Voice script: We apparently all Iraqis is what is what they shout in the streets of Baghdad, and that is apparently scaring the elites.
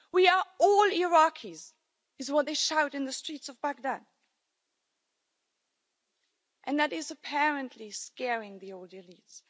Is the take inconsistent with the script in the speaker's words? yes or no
yes